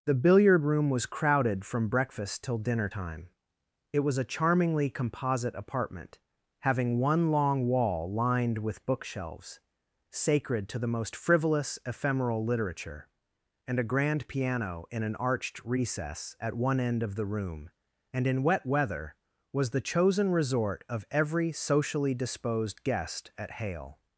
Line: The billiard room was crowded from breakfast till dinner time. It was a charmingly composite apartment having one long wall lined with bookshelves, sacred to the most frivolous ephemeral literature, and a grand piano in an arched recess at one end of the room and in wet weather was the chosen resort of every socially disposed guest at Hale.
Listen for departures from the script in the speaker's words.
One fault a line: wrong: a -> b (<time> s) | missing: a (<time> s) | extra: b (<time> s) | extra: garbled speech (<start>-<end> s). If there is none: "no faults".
no faults